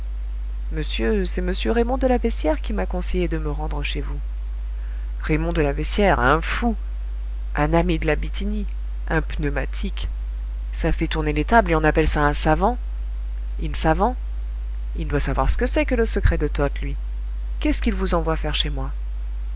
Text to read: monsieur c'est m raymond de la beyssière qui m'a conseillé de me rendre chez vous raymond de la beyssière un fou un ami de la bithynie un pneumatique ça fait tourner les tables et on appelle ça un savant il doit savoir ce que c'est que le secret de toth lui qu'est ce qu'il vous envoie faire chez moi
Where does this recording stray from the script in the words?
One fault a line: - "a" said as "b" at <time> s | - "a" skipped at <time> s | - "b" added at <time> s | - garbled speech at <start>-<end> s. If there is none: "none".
- "savant il" added at 13.7 s